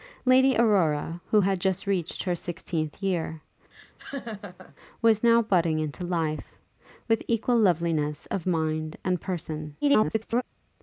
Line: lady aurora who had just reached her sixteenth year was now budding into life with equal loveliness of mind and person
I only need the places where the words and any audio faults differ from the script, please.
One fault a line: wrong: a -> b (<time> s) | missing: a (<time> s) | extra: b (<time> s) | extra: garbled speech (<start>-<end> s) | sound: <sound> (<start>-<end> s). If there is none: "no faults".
sound: laugh (3.7-4.8 s)
extra: garbled speech (9.8-10.4 s)